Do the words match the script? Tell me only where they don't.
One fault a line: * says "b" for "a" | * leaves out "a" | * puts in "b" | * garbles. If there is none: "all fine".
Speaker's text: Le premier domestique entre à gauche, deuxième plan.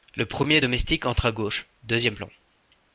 all fine